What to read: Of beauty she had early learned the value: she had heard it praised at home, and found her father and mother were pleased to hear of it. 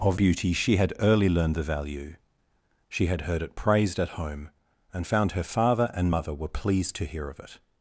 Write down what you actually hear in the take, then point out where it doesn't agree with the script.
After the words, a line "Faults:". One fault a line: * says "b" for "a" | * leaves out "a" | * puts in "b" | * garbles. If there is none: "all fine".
Of beauty she had early learned the value: she had heard it praised at home, and found her father and mother were pleased to hear of it.
Faults:
all fine